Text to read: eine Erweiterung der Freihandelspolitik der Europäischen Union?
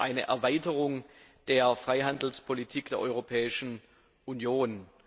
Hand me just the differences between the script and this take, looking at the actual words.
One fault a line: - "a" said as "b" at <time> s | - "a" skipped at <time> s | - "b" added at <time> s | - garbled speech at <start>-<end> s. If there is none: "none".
none